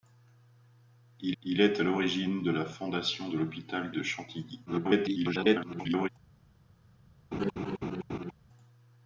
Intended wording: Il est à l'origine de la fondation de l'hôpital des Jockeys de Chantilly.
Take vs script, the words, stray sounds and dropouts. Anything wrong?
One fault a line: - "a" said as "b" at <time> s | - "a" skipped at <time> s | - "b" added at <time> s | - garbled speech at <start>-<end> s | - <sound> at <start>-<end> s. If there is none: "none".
- "il" added at 1.4 s
- "des Jockeys" skipped at 3.9 s
- garbled speech at 4.7-6.1 s
- laugh at 7.3-8.3 s